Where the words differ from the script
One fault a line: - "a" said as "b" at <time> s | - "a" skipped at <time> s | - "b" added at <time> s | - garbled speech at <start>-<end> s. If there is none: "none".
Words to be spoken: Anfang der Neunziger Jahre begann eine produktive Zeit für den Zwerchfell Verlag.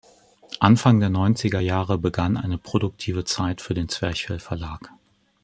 none